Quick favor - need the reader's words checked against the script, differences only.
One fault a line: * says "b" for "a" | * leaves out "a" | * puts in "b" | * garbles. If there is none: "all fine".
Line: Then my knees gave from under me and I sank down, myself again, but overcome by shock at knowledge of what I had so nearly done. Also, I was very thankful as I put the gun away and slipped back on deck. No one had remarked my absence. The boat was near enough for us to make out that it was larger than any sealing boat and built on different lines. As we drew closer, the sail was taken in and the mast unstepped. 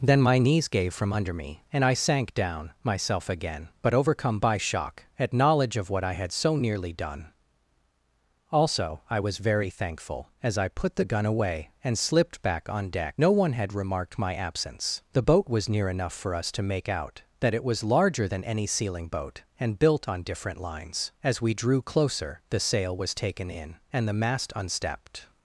all fine